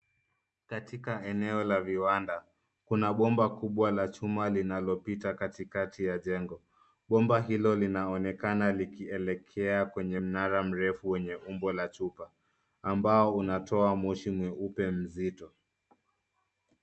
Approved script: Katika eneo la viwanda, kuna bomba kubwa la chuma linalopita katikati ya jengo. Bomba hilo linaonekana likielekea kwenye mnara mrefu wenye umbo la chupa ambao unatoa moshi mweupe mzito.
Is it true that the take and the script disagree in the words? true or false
false